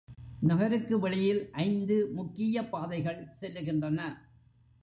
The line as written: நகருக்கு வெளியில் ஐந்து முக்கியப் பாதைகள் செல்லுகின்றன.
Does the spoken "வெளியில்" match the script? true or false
true